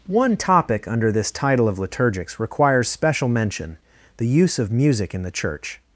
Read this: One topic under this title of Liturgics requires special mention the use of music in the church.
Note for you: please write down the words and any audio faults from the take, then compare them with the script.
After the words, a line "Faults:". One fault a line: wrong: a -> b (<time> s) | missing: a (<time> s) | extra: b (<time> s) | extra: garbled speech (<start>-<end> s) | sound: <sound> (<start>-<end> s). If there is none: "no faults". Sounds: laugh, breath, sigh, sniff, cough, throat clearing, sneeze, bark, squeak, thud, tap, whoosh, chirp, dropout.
One topic under this title of Liturgics requires special mention the use of music in the church.
Faults:
no faults